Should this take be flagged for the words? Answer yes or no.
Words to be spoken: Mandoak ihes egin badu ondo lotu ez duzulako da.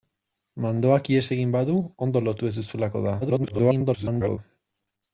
yes